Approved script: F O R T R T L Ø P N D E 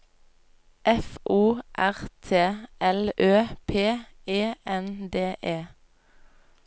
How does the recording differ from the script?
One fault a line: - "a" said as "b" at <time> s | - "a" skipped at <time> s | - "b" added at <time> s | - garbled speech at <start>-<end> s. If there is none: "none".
- "R T" skipped at 2.4 s
- "E" added at 4.3 s